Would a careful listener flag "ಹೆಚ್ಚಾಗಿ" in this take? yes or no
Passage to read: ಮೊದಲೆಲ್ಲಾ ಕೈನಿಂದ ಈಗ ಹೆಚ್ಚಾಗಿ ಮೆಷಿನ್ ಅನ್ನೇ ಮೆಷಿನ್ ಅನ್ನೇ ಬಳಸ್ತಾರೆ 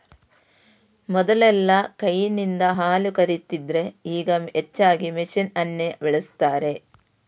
no